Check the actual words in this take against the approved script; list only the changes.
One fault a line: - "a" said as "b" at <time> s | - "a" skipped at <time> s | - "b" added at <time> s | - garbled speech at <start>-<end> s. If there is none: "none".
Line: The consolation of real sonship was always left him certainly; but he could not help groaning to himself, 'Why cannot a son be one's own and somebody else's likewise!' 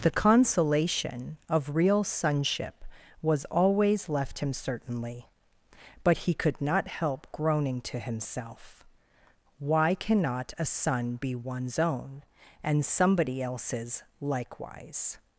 none